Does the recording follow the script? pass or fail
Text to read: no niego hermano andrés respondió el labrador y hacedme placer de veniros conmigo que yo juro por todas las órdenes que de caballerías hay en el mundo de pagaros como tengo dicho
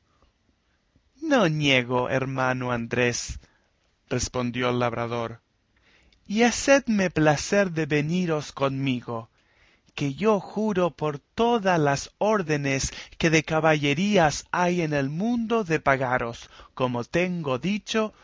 pass